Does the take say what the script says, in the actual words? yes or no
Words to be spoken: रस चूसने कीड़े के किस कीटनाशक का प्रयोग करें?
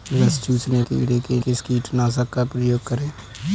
yes